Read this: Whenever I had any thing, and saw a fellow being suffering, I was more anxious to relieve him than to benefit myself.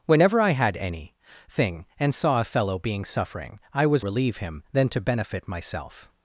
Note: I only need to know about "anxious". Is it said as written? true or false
false